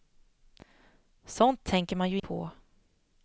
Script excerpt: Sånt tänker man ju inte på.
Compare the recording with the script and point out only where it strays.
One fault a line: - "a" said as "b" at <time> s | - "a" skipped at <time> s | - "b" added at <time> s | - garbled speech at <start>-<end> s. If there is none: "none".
- "inte" skipped at 2.2 s